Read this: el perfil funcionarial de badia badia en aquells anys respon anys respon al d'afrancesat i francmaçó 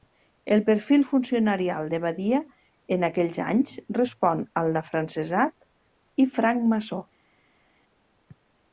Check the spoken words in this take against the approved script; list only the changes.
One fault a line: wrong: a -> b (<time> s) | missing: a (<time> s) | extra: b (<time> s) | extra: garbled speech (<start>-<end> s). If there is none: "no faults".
missing: badia (2.4 s)
missing: anys respon (4.5 s)